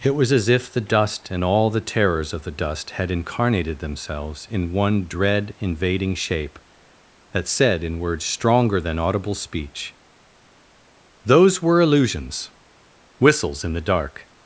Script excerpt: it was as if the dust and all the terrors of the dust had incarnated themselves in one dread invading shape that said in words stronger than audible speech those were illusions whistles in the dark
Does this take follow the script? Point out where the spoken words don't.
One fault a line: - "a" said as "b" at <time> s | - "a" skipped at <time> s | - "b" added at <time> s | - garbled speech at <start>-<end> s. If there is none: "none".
none